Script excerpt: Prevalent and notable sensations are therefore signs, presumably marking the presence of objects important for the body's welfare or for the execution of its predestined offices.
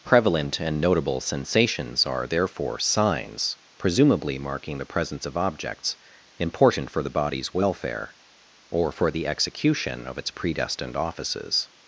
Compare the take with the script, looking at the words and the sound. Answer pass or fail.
pass